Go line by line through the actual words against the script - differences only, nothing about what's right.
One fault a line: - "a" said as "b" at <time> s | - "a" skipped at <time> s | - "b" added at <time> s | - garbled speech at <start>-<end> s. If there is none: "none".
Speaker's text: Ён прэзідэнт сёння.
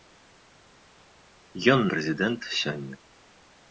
none